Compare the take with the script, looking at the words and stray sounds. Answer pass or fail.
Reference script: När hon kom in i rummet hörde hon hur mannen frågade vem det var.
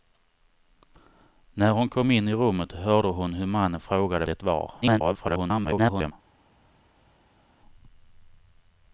fail